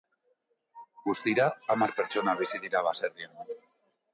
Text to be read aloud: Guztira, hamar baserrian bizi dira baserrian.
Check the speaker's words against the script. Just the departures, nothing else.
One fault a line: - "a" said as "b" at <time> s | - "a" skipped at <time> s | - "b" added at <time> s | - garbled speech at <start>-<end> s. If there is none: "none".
- "baserrian" said as "pertsona" at 2.0 s